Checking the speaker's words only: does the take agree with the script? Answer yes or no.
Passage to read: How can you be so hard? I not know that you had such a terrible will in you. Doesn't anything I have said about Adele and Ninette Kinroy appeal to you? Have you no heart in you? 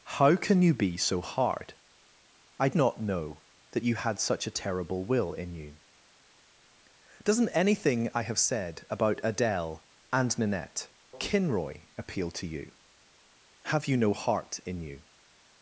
yes